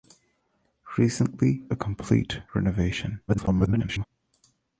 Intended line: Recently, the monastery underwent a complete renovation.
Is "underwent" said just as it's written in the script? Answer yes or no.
no